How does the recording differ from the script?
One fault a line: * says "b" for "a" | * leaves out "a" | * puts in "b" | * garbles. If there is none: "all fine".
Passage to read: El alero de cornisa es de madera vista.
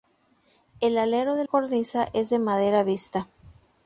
all fine